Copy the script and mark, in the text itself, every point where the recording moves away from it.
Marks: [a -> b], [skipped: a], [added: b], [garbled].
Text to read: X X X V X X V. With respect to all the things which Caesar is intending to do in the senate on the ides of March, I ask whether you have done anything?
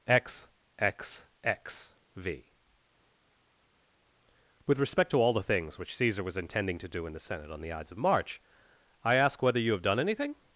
X X X V [skipped: X X V.] With respect to all the things which Caesar [is -> was] intending to do in the senate on the ides of March, I ask whether you have done anything?